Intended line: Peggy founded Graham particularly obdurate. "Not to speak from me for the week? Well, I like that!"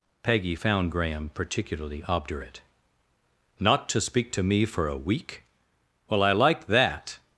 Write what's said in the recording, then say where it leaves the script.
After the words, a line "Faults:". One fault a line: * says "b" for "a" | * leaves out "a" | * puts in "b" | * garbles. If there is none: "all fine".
Peggy found Graham particularly obdurate. "Not to speak to me for a week? Well, I like that!"
Faults:
* says "found" for "founded"
* says "to" for "from"
* says "a" for "the"